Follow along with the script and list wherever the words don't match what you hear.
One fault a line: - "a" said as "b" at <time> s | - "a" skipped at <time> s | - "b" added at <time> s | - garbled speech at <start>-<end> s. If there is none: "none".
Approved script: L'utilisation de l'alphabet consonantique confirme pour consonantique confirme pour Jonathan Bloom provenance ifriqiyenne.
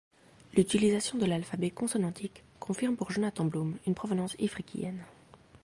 - "consonantique confirme pour" skipped at 3.1 s
- "une" added at 3.9 s